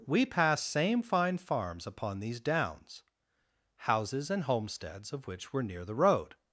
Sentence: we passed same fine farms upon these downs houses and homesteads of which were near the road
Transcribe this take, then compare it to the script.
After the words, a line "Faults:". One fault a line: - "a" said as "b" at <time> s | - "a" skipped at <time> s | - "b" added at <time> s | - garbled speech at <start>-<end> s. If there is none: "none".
we passed same fine farms upon these downs houses and homesteads of which were near the road
Faults:
none